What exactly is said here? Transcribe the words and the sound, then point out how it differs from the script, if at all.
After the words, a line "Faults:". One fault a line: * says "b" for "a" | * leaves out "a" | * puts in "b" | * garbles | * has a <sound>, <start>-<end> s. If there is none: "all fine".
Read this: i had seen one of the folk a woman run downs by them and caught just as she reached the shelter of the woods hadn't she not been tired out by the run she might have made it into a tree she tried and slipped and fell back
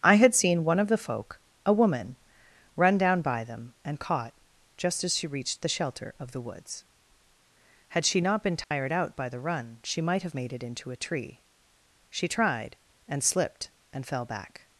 i had seen one of the folk a woman run down by them and caught just as she reached the shelter of the woods had she not been tired out by the run she might have made it into a tree she tried and slipped and fell back
Faults:
* says "down" for "downs"
* says "had" for "hadn't"
* has a dropout, 8.6-8.7 s